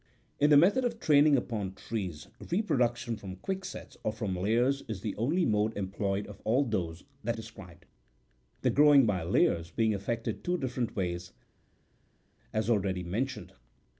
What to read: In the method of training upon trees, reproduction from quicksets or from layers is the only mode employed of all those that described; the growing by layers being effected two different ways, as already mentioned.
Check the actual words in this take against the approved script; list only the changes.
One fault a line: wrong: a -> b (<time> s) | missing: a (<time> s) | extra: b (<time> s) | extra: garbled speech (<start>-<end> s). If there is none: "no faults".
no faults